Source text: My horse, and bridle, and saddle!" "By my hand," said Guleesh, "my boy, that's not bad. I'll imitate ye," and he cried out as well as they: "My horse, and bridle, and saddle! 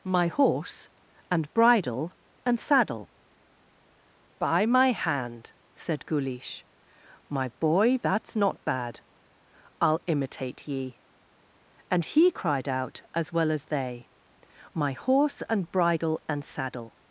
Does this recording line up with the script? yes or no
yes